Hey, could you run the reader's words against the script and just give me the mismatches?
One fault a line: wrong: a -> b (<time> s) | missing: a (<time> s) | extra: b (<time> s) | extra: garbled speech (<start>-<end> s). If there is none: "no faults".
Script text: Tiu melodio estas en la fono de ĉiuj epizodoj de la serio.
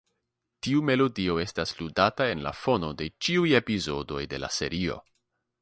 extra: ludata (1.8 s)